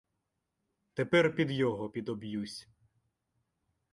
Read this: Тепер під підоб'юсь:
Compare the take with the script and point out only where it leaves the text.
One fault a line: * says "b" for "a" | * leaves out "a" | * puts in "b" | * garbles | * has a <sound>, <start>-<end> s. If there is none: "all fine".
* puts in "його"